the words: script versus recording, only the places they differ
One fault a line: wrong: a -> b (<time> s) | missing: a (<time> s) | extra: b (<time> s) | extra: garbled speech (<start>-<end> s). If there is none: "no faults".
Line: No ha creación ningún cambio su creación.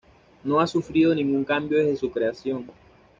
wrong: creación -> sufrido (0.7 s)
extra: desde (1.8 s)